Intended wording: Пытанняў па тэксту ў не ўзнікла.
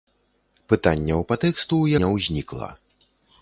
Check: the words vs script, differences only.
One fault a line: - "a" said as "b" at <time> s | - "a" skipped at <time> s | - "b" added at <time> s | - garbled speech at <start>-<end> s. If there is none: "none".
none